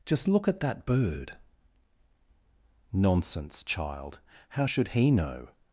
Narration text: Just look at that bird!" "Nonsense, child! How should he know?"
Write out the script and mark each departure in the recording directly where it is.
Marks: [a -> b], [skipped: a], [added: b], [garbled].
Just look at that bird!" "Nonsense, child! How should he know?"